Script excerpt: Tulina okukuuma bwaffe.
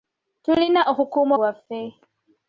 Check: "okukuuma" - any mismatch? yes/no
no